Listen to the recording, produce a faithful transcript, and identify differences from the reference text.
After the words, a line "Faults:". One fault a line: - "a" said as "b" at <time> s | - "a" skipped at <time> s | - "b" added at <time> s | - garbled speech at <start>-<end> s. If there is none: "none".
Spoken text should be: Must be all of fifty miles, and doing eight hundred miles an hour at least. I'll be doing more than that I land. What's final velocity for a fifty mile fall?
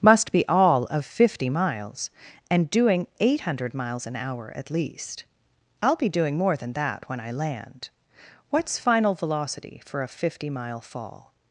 Must be all of fifty miles, and doing eight hundred miles an hour at least. I'll be doing more than that when I land. What's final velocity for a fifty mile fall?
Faults:
- "when" added at 7.1 s